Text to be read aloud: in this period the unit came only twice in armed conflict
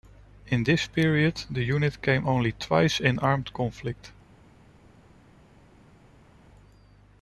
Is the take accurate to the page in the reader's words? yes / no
yes